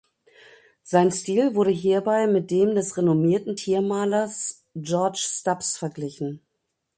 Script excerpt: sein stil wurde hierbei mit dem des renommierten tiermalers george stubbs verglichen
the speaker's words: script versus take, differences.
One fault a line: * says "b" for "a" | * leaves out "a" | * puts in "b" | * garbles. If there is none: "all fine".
all fine